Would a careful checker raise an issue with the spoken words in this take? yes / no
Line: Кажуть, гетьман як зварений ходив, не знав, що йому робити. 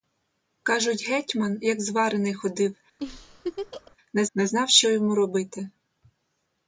yes